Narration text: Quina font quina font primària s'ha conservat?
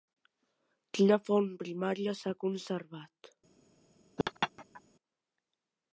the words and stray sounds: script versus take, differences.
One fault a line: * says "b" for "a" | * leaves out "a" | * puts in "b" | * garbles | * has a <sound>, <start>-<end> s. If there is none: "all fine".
* leaves out "quina font"
* has a laugh, 4.2-4.8 s